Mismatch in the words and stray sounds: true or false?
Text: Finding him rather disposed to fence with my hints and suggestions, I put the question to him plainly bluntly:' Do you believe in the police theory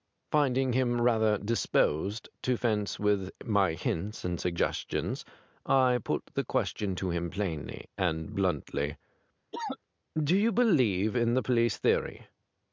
true